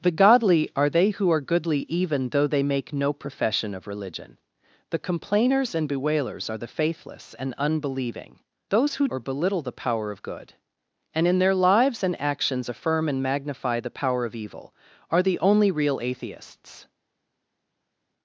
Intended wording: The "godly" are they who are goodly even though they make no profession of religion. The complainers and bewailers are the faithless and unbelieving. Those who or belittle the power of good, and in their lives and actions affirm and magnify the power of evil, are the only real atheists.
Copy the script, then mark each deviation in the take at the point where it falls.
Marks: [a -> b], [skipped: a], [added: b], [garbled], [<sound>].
The "godly" are they who are goodly even though they make no profession of religion. The complainers and bewailers are the faithless and unbelieving. Those who or belittle the power of good, and in their lives and actions affirm and magnify the power of evil, are the only real atheists.